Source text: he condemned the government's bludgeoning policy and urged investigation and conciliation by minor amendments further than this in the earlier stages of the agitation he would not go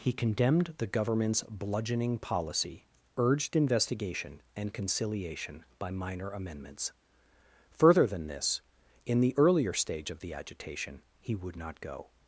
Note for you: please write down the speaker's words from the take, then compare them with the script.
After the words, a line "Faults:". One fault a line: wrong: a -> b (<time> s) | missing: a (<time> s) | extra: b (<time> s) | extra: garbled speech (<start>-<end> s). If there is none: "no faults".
he condemned the government's bludgeoning policy urged investigation and conciliation by minor amendments further than this in the earlier stage of the agitation he would not go
Faults:
missing: and (2.9 s)
wrong: stages -> stage (9.7 s)